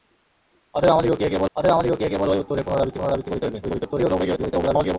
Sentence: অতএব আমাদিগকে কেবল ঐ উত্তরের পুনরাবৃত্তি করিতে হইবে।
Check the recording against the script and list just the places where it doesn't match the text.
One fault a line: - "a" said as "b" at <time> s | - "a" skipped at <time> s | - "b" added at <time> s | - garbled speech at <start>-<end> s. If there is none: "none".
- "অতএব আমাদিগকে কেবল" added at 1.5 s
- "পুনরাবৃত্তি" added at 3.0 s
- garbled speech at 3.6-5.0 s